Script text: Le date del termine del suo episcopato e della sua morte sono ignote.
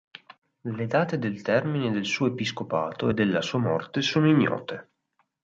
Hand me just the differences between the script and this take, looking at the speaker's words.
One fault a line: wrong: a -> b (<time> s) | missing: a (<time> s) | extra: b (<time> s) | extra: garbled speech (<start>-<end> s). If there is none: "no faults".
no faults